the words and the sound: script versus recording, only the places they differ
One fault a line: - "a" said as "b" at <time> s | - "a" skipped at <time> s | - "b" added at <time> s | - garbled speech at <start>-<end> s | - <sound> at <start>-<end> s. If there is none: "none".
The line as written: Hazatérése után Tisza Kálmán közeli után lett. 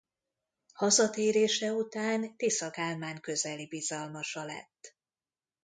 - "után" said as "bizalmasa" at 3.7 s